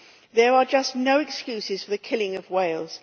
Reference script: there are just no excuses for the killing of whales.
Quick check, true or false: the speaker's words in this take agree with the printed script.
true